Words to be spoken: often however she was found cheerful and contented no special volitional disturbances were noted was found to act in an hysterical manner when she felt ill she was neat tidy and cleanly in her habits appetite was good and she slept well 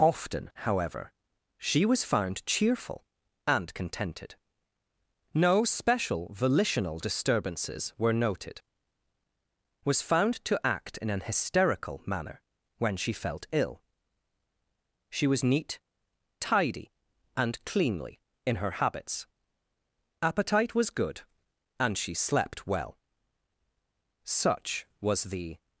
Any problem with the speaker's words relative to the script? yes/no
yes